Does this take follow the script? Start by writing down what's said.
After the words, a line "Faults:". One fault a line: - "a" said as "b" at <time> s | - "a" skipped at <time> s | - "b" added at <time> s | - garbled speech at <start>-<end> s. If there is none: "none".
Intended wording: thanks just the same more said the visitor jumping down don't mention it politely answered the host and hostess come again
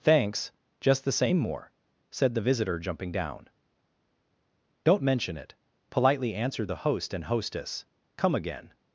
thanks just the same more said the visitor jumping down don't mention it politely answered the host and hostess come again
Faults:
none